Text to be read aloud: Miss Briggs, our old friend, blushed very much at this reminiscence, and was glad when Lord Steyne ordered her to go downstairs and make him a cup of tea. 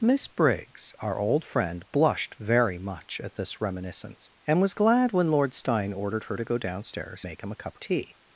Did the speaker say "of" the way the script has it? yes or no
no